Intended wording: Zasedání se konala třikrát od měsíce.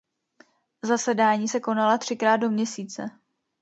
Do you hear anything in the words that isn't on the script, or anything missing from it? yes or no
yes